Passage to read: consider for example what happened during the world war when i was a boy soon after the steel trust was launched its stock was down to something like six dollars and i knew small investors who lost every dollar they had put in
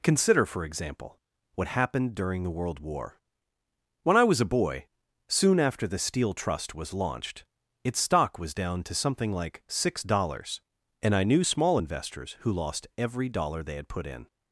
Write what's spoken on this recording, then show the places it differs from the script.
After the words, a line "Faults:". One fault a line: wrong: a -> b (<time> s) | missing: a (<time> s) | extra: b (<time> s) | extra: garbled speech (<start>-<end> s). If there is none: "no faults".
consider for example what happened during the world war when i was a boy soon after the steel trust was launched its stock was down to something like six dollars and i knew small investors who lost every dollar they had put in
Faults:
no faults